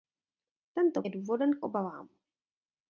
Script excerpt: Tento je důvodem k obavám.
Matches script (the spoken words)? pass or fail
pass